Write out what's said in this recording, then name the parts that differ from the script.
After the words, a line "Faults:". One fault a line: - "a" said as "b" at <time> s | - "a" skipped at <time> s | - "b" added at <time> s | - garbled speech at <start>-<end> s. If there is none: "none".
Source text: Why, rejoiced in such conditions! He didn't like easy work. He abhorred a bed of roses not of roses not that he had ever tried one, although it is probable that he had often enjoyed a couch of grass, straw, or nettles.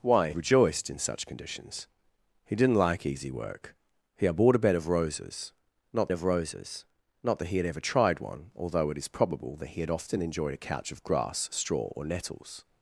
Why, rejoiced in such conditions! He didn't like easy work. He abhorred a bed of roses not of roses not that he had ever tried one, although it is probable that he had often enjoyed a couch of grass, straw, or nettles.
Faults:
none